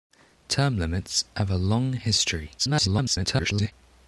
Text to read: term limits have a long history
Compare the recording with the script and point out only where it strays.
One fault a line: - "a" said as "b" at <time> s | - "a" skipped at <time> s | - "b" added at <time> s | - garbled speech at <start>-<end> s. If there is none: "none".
- garbled speech at 2.6-3.7 s